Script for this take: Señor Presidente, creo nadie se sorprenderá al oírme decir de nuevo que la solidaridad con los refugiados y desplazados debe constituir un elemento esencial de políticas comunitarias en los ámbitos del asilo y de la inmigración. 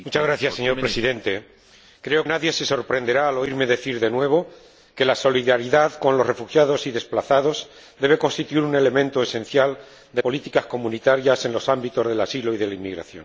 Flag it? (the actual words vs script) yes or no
no